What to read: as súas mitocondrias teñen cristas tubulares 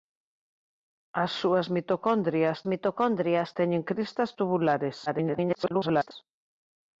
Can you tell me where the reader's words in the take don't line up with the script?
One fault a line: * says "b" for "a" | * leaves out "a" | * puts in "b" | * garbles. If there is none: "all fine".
* puts in "mitocondrias"
* garbles